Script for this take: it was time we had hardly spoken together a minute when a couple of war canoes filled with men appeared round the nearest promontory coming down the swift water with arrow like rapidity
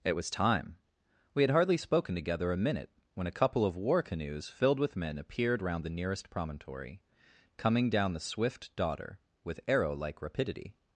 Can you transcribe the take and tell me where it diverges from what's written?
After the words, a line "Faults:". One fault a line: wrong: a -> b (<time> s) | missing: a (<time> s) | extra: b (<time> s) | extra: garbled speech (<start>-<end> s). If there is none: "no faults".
it was time we had hardly spoken together a minute when a couple of war canoes filled with men appeared round the nearest promontory coming down the swift daughter with arrow like rapidity
Faults:
wrong: water -> daughter (8.8 s)